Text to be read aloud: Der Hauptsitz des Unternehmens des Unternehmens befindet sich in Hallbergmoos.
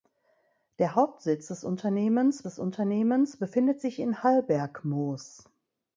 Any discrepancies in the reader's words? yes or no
no